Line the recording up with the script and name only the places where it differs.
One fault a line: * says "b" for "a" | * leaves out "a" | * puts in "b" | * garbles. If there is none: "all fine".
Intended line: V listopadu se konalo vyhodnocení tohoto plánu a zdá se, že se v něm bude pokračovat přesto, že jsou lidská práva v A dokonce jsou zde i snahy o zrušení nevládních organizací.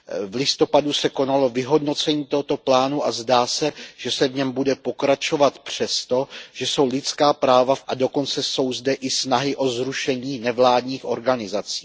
all fine